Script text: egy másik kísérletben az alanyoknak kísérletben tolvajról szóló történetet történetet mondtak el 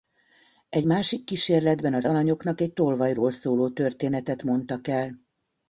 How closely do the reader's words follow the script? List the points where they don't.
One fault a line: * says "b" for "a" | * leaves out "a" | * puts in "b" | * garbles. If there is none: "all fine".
* says "egy" for "kísérletben"
* leaves out "történetet"